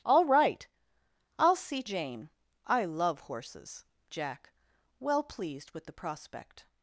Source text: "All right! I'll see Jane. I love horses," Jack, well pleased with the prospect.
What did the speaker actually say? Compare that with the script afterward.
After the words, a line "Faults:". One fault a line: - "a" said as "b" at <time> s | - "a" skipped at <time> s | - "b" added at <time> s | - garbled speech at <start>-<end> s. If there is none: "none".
"All right! I'll see Jane. I love horses," Jack, well pleased with the prospect.
Faults:
none